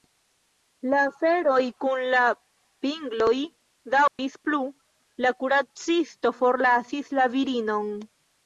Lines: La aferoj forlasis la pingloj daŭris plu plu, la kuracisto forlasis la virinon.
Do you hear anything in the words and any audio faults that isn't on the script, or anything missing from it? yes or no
yes